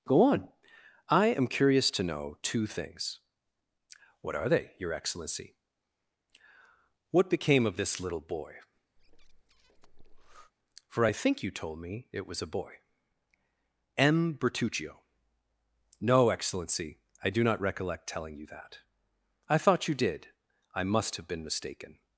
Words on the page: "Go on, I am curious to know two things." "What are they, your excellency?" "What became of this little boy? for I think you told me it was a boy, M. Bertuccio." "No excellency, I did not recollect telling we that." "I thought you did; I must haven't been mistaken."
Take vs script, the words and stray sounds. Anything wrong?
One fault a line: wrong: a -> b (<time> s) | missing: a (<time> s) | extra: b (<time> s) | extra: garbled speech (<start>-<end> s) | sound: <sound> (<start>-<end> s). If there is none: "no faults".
sound: breath (9.0-10.5 s)
wrong: did -> do (17.3 s)
wrong: we -> you (18.3 s)
wrong: haven't -> have (21.1 s)